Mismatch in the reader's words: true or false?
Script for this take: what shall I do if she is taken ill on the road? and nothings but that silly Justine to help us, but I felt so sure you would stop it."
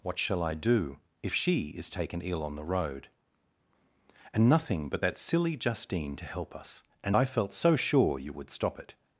true